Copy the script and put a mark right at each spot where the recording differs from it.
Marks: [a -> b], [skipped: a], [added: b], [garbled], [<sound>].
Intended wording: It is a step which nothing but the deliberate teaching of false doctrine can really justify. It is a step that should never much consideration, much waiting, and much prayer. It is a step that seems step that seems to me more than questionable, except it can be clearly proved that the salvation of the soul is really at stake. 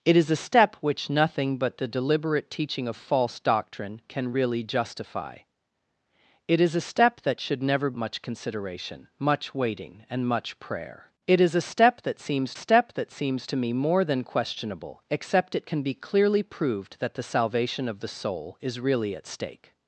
It is a step which nothing but the deliberate teaching of false doctrine can really justify. It is a step that should never much consideration, much waiting, and much prayer. It is a step that seems step that seems to me more than questionable, except it can be clearly proved that the salvation of the soul is really at stake.